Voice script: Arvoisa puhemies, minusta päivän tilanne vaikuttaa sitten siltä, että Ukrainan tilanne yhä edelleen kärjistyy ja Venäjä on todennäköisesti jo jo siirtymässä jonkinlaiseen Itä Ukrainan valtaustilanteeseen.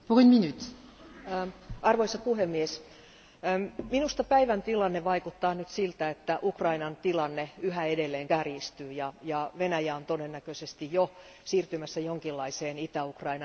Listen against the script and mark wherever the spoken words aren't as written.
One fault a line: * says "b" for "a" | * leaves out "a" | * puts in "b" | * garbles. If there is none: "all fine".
* says "nyt" for "sitten"
* leaves out "jo"